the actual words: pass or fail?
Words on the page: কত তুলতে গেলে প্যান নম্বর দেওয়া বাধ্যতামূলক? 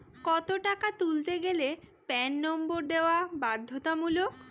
fail